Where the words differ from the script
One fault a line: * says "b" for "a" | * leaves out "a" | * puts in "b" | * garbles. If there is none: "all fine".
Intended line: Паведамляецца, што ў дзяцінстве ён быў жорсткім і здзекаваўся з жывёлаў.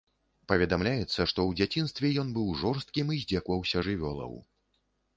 * leaves out "з"